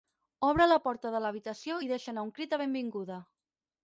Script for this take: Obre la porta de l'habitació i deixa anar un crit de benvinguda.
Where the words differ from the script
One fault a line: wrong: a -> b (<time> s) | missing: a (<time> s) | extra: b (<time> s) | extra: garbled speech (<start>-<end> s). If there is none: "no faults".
no faults